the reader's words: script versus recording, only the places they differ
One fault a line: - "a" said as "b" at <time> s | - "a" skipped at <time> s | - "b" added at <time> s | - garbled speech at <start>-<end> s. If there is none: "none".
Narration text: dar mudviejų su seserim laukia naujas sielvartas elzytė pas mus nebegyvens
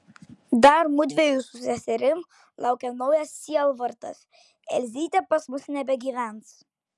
none